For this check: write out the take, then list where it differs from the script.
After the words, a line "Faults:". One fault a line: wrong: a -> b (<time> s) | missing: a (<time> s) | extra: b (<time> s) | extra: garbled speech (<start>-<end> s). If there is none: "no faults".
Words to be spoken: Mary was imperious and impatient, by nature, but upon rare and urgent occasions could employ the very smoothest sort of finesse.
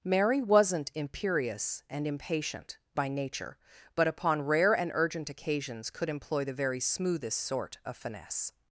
Mary wasn't imperious and impatient, by nature, but upon rare and urgent occasions could employ the very smoothest sort of finesse.
Faults:
wrong: was -> wasn't (0.4 s)